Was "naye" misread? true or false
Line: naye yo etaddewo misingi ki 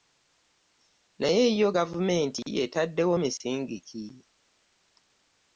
false